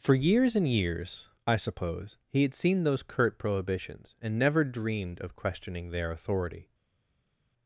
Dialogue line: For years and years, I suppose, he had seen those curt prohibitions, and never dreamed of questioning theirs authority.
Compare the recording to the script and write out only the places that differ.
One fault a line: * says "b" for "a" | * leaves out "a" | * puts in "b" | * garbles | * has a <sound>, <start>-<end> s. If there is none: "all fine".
* says "their" for "theirs"